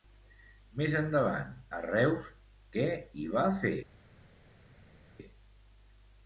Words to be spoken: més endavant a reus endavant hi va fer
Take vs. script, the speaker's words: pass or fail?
fail